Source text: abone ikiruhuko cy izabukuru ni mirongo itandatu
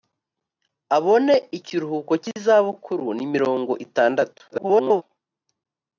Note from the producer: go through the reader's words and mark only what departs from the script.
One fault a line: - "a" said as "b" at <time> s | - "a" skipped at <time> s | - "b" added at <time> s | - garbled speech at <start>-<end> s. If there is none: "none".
- garbled speech at 4.5-5.0 s